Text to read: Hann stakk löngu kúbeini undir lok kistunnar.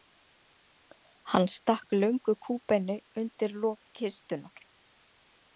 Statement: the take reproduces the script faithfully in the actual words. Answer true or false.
true